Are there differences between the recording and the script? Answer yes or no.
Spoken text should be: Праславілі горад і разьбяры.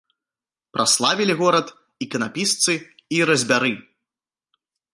yes